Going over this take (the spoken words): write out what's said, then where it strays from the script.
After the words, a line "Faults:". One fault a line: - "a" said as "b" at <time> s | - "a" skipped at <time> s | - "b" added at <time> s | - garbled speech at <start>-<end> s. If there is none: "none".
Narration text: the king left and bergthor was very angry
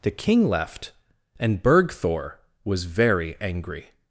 the king left and bergthor was very angry
Faults:
none